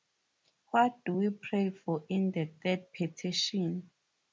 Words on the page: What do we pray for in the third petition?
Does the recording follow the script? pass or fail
pass